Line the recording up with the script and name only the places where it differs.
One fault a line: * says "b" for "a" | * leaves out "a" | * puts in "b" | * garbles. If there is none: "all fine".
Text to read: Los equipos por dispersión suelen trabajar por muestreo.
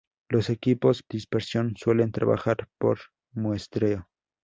* leaves out "por"